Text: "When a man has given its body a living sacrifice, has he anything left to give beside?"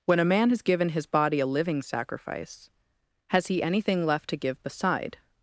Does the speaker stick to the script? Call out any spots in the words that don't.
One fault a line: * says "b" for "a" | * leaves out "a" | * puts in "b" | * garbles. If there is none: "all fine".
* says "his" for "its"